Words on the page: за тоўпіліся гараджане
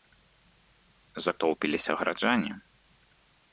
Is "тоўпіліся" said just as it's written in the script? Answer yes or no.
yes